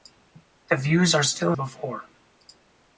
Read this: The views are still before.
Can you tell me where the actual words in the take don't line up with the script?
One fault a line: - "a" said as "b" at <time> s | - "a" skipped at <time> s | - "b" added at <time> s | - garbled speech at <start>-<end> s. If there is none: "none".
none